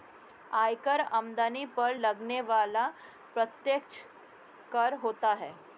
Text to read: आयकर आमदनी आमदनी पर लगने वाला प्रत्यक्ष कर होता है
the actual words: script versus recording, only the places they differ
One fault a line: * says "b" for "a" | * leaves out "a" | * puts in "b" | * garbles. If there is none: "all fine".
* leaves out "आमदनी"